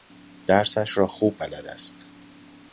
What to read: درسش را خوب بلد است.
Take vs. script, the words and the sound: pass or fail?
pass